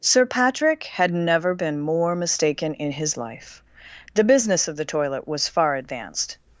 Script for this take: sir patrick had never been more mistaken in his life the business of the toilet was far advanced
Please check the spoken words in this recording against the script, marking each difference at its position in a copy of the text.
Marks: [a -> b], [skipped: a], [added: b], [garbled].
sir patrick had never been more mistaken in his life the business of the toilet was far advanced